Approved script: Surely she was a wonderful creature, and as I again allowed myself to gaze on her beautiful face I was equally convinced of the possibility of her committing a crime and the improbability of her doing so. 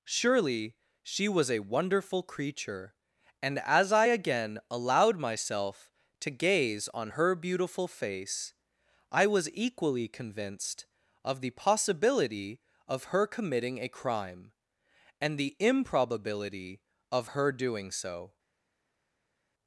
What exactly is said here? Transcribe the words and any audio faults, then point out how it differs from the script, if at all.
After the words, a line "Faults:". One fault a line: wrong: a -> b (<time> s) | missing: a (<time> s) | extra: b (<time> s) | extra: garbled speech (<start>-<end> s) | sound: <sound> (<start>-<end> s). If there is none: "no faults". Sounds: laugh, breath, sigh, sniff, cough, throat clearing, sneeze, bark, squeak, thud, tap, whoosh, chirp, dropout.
Surely she was a wonderful creature, and as I again allowed myself to gaze on her beautiful face I was equally convinced of the possibility of her committing a crime and the improbability of her doing so.
Faults:
no faults